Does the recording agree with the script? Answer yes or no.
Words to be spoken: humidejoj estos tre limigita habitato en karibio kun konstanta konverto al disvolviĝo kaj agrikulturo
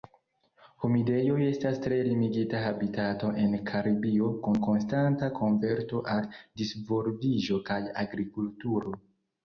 no